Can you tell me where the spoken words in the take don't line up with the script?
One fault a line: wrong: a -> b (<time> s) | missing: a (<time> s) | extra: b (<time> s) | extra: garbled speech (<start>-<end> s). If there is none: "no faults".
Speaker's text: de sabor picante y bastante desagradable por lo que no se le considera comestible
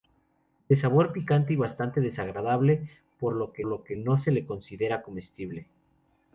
extra: lo que (3.7 s)